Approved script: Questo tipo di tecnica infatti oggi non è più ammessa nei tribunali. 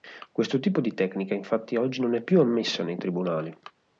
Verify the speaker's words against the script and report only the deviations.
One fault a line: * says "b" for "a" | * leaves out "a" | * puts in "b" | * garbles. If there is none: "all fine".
all fine